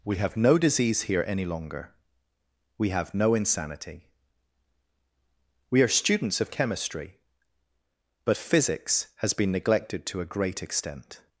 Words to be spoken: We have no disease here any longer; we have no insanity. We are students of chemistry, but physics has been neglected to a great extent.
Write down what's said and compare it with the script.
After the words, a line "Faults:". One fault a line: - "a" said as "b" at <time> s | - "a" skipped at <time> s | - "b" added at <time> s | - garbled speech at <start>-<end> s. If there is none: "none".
We have no disease here any longer; we have no insanity. We are students of chemistry, but physics has been neglected to a great extent.
Faults:
none